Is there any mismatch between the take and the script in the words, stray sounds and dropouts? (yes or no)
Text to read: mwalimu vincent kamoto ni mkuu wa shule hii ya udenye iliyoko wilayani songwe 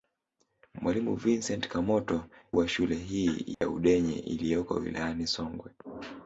yes